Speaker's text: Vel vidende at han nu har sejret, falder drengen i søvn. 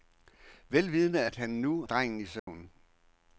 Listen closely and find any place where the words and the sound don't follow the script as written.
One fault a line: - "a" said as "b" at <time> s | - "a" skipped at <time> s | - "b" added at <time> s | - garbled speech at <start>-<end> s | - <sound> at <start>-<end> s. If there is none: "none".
- "har sejret falder" skipped at 1.8 s
- dropout at 2.4-2.5 s